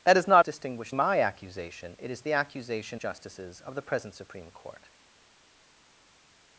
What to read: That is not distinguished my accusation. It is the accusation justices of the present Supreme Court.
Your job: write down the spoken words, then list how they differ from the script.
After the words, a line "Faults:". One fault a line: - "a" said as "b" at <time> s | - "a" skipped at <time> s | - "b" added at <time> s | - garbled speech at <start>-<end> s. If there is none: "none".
That is not distinguished my accusation. It is the accusation justices of the present Supreme Court.
Faults:
none